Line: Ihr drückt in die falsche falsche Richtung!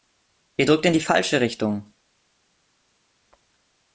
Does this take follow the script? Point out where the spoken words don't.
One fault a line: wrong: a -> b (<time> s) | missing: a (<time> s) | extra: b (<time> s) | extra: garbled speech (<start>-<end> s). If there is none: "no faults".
missing: falsche (1.4 s)